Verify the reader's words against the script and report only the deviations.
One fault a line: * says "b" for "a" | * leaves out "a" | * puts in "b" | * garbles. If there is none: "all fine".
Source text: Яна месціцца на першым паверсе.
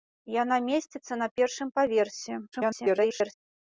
* garbles